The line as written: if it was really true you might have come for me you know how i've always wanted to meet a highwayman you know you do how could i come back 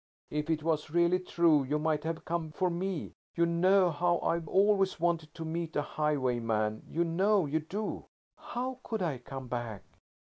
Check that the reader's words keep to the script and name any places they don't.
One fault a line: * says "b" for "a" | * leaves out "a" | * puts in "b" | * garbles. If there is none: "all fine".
all fine